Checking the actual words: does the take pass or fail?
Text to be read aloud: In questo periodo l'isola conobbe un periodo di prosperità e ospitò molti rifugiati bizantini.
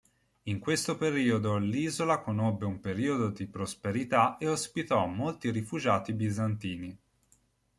pass